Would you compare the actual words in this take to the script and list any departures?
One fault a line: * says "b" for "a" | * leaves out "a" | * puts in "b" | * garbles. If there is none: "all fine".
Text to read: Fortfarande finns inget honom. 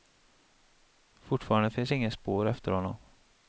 * puts in "spår efter"